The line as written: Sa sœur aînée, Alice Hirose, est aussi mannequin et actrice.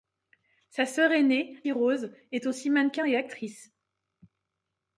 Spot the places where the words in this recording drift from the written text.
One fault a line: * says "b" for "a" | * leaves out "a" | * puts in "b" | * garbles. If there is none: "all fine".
* leaves out "Alice"